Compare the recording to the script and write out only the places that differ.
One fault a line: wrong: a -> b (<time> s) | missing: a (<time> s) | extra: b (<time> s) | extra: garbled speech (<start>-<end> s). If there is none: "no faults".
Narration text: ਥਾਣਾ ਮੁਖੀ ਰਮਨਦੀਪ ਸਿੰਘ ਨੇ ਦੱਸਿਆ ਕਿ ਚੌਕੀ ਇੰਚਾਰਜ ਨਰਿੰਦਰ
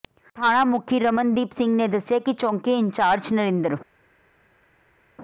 no faults